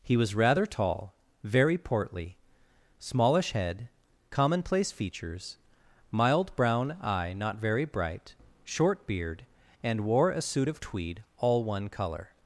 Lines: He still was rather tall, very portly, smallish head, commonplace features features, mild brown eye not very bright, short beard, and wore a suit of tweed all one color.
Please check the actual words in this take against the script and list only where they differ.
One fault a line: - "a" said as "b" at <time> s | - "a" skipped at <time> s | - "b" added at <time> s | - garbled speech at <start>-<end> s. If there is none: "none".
- "still" skipped at 0.2 s
- "features" skipped at 5.6 s